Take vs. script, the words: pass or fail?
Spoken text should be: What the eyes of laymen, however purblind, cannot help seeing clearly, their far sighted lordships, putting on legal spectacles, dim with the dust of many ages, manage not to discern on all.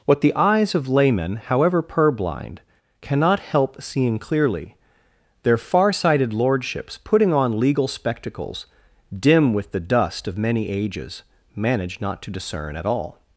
fail